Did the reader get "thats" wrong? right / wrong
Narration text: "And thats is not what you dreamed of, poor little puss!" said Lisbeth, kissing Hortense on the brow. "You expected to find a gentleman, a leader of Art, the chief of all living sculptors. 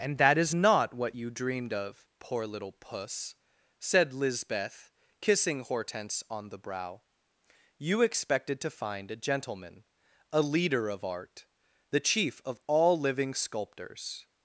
wrong